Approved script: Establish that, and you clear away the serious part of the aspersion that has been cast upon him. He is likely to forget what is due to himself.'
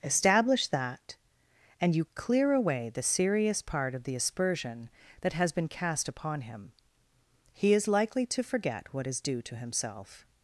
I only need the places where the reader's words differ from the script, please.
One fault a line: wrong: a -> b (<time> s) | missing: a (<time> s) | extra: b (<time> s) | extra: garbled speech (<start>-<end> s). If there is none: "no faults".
no faults